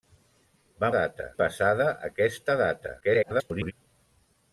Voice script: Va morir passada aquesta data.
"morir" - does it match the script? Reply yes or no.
no